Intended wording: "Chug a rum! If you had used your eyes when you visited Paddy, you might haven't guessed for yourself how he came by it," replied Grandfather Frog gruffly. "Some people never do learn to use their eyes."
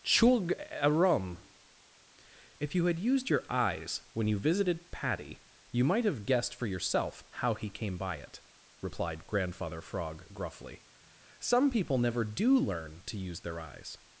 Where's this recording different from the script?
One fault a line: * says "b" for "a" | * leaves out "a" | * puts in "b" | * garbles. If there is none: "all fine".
* says "have" for "haven't"